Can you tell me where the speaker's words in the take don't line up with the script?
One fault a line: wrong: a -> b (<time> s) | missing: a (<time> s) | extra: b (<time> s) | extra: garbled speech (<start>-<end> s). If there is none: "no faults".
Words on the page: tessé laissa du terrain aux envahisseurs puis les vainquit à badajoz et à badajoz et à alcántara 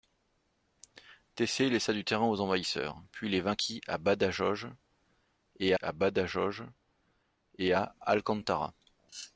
no faults